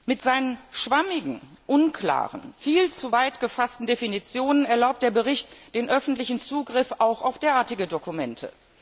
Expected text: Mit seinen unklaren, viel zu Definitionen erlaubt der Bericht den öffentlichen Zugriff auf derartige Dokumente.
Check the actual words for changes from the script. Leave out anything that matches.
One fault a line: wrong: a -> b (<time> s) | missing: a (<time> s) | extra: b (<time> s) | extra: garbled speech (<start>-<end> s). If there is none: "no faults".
extra: schwammigen (0.7 s)
extra: weit gefassten (3.1 s)
extra: auch (7.0 s)